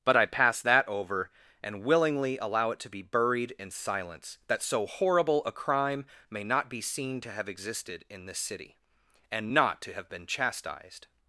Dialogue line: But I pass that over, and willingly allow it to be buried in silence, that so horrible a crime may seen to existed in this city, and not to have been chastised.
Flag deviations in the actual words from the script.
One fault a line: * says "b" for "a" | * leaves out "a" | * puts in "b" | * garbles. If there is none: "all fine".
* puts in "not be"
* puts in "have"